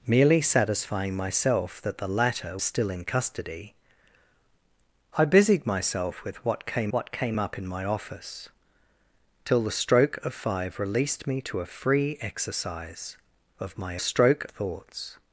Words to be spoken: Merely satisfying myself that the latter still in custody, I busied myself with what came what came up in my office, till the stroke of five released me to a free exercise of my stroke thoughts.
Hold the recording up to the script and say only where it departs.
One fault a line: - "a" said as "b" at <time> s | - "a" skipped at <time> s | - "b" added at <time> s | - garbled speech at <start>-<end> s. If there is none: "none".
none